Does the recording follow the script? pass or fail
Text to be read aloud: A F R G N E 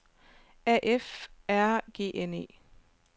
pass